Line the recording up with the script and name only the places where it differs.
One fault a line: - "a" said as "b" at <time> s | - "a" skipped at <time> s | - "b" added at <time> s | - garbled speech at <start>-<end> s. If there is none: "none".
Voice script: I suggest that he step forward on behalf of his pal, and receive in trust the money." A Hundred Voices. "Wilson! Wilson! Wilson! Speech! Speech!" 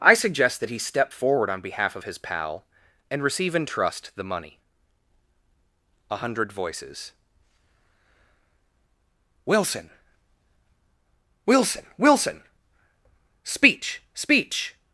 none